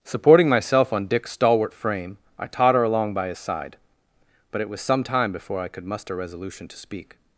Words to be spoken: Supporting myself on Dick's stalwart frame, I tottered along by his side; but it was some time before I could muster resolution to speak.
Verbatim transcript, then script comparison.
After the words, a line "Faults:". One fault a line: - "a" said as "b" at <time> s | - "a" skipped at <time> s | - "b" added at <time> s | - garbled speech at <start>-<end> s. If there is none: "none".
Supporting myself on Dick's stalwart frame, I totter along by his side; but it was some time before I could muster resolution to speak.
Faults:
- "tottered" said as "totter" at 2.5 s